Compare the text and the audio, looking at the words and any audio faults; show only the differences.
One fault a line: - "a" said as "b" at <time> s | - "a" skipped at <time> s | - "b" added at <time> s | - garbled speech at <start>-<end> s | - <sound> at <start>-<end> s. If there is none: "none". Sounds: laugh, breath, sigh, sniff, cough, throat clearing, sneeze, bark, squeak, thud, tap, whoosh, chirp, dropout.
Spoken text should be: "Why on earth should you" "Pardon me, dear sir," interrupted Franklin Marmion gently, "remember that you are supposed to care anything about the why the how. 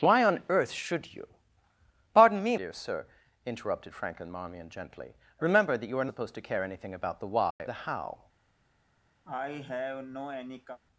- dropout at 7.5-7.6 s
- cough at 9.2-10.8 s